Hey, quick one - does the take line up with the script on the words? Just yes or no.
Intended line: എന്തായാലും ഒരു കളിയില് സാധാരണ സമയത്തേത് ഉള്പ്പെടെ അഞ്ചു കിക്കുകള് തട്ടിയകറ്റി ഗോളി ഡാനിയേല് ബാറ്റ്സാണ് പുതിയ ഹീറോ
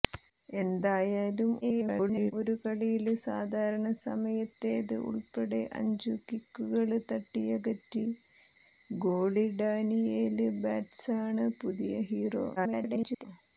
no